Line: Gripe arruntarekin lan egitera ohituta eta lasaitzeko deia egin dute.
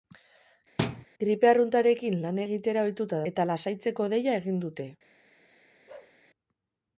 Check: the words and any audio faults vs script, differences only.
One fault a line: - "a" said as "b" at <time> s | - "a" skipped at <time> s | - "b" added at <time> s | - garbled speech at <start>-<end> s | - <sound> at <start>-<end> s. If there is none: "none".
- thud at 0.8-1.1 s
- bark at 5.9-6.2 s